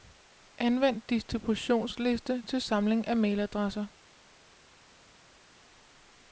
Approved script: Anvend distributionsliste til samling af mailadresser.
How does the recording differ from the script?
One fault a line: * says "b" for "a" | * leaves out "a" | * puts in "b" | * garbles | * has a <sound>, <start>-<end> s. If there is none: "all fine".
all fine